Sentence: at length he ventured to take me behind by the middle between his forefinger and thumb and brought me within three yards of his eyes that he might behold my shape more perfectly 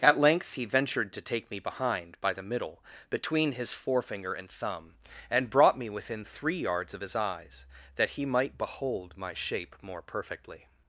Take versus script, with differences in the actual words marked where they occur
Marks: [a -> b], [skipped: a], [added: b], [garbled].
at length he ventured to take me behind by the middle between his forefinger and thumb and brought me within three yards of his eyes that he might behold my shape more perfectly